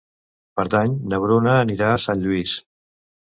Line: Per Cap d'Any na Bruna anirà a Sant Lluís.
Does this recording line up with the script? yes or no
no